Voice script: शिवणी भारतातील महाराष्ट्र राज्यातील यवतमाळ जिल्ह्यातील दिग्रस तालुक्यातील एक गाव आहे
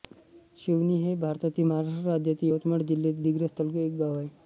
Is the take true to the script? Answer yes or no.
no